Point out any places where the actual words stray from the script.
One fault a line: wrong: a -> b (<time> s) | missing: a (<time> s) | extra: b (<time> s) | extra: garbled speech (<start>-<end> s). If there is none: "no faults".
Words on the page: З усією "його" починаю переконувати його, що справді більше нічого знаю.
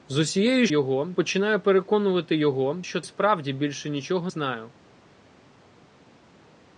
no faults